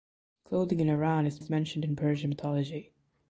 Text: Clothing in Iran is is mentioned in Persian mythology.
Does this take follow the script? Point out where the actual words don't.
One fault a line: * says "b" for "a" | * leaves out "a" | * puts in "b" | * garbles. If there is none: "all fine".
all fine